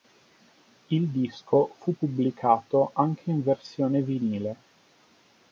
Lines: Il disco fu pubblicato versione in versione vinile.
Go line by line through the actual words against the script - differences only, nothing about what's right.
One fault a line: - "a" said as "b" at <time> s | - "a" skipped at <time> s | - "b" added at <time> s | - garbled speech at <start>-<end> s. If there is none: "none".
- "versione" said as "anche" at 2.9 s